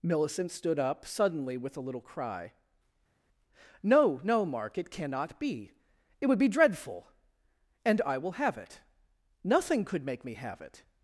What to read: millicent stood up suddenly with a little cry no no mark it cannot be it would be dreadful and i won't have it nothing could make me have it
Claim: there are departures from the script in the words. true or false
true